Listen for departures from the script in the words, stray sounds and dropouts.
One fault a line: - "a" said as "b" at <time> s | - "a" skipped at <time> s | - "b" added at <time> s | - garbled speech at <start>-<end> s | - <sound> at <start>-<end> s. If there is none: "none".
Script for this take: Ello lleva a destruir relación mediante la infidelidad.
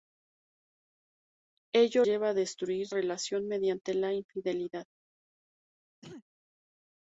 - throat clearing at 6.0-6.2 s